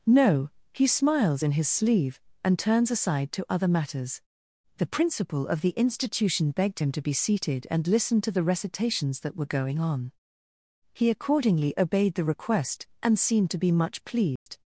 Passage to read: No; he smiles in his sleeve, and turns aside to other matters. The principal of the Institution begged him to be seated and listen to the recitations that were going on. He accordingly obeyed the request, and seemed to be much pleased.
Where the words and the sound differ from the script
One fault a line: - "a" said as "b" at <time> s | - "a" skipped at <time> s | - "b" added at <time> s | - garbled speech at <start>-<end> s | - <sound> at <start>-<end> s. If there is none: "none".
- dropout at 14.4-14.5 s